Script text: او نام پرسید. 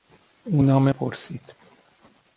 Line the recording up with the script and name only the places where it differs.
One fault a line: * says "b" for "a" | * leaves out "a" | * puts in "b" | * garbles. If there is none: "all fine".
all fine